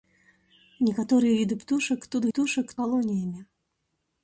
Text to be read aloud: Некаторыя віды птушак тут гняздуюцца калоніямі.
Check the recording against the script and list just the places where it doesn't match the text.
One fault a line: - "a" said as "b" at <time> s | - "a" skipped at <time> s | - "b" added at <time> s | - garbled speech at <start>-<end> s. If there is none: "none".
- "гняздуюцца" said as "птушак" at 2.3 s